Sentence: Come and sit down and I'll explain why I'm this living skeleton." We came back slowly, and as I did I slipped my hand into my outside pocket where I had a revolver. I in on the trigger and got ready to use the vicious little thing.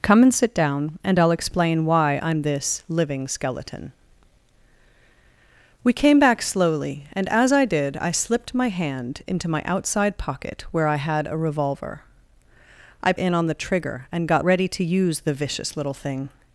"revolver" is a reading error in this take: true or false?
false